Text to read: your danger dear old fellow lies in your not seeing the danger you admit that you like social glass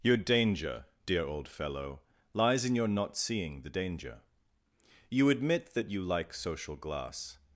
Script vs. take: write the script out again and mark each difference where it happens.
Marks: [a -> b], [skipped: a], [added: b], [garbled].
your danger dear old fellow lies in your not seeing the danger you admit that you like social glass